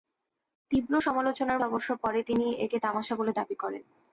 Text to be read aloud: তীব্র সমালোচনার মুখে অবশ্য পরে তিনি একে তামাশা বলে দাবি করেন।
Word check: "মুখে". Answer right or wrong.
wrong